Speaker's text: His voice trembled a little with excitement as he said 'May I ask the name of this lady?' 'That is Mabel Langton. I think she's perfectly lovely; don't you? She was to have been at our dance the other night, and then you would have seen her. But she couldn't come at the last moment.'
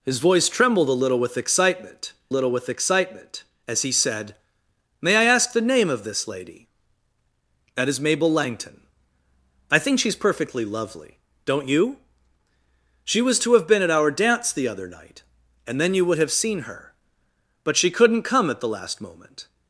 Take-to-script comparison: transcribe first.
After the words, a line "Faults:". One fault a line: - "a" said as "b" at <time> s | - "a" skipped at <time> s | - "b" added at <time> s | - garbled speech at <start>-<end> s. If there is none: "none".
His voice trembled a little with excitement little with excitement as he said 'May I ask the name of this lady?' 'That is Mabel Langton. I think she's perfectly lovely; don't you? She was to have been at our dance the other night, and then you would have seen her. But she couldn't come at the last moment.'
Faults:
- "little with excitement" added at 2.3 s